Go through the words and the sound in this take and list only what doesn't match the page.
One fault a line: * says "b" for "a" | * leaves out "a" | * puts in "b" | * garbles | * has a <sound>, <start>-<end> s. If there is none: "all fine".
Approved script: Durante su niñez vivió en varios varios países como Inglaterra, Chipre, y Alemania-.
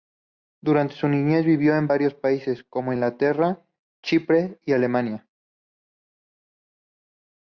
* leaves out "varios"